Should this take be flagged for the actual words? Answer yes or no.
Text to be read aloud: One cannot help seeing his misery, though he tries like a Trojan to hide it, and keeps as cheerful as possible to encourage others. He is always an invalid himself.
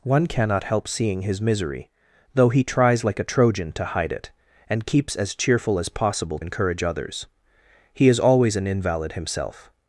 yes